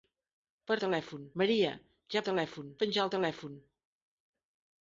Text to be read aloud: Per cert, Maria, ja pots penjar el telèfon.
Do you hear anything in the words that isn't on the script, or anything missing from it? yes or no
yes